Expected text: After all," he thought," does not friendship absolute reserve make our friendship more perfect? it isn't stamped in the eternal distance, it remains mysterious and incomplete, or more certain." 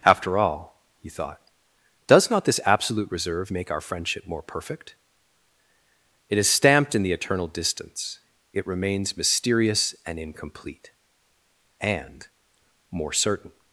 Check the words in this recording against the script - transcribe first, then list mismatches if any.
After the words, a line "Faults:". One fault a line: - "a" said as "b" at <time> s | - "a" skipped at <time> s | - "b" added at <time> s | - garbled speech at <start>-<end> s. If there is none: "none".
After all," he thought," does not this absolute reserve make our friendship more perfect? it is stamped in the eternal distance, it remains mysterious and incomplete, and more certain."
Faults:
- "friendship" said as "this" at 2.5 s
- "isn't" said as "is" at 6.4 s
- "or" said as "and" at 11.8 s